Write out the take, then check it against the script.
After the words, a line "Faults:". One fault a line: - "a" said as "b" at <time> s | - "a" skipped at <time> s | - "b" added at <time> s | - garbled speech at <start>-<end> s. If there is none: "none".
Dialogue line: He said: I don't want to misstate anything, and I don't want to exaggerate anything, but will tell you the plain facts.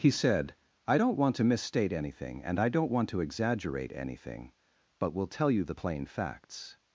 He said: I don't want to misstate anything, and I don't want to exaggerate anything, but will tell you the plain facts.
Faults:
none